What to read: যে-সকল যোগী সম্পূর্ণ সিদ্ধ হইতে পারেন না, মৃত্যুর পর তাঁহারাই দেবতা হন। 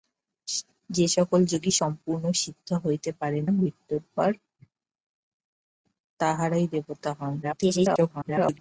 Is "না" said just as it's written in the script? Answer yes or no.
no